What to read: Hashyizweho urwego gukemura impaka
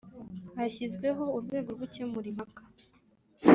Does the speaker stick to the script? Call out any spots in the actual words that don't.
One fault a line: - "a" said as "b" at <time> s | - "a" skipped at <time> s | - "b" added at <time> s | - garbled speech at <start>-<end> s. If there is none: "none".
none